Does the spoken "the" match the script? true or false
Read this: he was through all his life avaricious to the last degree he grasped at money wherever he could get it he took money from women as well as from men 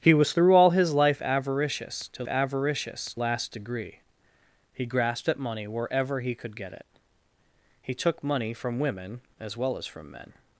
false